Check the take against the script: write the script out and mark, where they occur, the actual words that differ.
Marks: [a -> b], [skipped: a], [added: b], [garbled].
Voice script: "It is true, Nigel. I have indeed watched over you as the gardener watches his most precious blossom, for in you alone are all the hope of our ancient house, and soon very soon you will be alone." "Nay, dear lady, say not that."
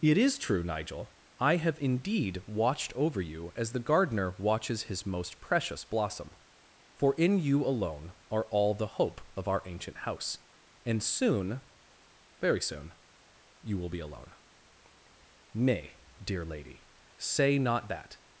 "It is true, Nigel. I have indeed watched over you as the gardener watches his most precious blossom, for in you alone are all the hope of our ancient house, and soon very soon you will be alone." "Nay, dear lady, say not that."